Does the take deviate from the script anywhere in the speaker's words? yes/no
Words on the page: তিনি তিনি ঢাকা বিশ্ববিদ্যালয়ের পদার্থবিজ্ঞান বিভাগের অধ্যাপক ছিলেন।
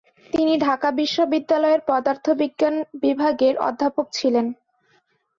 yes